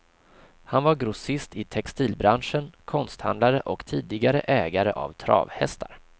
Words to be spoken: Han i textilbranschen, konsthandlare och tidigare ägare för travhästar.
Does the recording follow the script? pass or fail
fail